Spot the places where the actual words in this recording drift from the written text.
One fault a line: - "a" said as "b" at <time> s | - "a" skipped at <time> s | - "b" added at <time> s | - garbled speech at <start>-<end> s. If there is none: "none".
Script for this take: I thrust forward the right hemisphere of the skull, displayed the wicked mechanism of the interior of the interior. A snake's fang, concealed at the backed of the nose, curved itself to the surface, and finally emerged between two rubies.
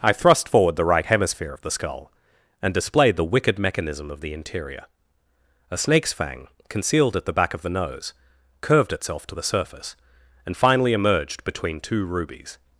- "and" added at 2.6 s
- "of the interior" skipped at 4.9 s
- "backed" said as "back" at 7.3 s